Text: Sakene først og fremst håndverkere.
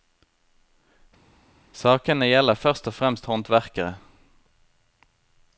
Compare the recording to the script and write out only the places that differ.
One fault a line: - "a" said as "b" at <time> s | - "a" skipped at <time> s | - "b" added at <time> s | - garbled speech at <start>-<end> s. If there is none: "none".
- "gjelder" added at 2.3 s